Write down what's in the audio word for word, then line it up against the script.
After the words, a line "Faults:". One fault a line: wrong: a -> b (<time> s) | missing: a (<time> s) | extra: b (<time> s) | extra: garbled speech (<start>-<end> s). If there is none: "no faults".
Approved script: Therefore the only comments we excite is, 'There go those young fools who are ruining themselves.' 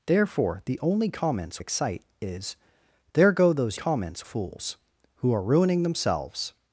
Therefore the only comments excite is, 'There go those comments fools who are ruining themselves.'
Faults:
missing: we (1.6 s)
wrong: young -> comments (3.7 s)